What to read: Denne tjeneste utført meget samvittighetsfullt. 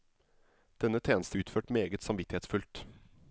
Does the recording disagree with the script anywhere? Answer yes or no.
no